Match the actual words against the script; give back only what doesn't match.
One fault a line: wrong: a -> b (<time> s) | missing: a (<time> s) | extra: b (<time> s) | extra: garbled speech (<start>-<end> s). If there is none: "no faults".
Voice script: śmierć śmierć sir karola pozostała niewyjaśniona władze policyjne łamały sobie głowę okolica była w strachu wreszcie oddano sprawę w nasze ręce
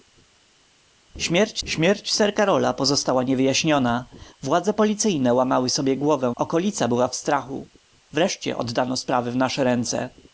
no faults